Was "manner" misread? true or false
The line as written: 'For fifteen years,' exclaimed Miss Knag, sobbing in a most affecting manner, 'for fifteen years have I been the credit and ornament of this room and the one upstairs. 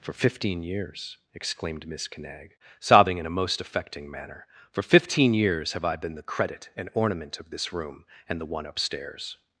false